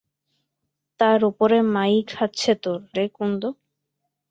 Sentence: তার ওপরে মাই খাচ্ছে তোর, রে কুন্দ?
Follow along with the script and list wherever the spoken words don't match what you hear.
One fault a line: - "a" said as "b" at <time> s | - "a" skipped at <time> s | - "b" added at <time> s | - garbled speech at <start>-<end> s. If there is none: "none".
none